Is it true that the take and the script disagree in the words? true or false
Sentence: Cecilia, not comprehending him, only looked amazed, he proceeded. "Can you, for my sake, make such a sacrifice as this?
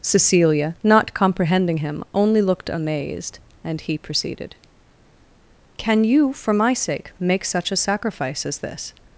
true